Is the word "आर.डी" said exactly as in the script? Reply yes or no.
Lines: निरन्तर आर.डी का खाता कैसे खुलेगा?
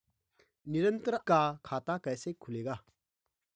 no